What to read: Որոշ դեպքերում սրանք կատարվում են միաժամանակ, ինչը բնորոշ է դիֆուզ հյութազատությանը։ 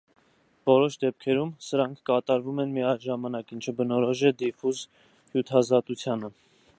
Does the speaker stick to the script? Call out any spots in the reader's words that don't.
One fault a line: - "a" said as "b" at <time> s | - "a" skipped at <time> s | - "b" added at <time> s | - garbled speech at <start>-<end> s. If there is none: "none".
none